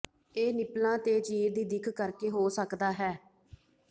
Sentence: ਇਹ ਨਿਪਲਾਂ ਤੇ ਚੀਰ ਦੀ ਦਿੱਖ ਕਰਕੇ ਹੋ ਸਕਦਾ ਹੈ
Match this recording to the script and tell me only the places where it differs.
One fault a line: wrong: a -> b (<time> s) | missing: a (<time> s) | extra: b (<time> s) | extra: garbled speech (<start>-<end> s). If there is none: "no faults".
no faults